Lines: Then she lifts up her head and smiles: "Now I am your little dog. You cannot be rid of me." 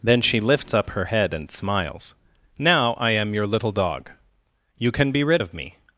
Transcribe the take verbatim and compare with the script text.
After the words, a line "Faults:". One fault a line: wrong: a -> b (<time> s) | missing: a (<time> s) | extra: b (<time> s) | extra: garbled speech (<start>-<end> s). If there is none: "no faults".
Then she lifts up her head and smiles: "Now I am your little dog. You can be rid of me."
Faults:
wrong: cannot -> can (4.9 s)